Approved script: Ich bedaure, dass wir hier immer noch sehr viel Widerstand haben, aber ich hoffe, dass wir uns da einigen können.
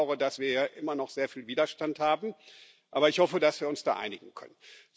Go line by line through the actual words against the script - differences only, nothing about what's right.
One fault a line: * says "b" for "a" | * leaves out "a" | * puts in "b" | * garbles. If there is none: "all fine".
all fine